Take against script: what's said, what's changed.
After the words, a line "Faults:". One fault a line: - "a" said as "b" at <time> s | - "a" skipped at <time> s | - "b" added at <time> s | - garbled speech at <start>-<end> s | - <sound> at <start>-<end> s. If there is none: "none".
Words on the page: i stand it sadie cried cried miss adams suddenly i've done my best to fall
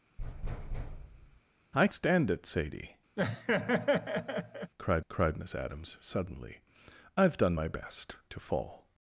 i stand it sadie cried cried miss adams suddenly i've done my best to fall
Faults:
- thud at 0.2-1.4 s
- laugh at 3.2-4.7 s